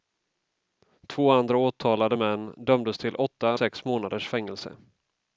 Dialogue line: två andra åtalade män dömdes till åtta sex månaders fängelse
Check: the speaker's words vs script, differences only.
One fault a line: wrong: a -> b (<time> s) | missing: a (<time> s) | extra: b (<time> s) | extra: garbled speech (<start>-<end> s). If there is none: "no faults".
no faults